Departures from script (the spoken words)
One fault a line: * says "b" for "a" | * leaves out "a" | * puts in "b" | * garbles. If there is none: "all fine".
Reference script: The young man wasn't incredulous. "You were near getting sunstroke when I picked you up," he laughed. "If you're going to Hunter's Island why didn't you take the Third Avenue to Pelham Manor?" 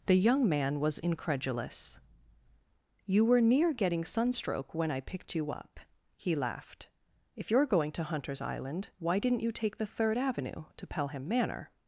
* says "was" for "wasn't"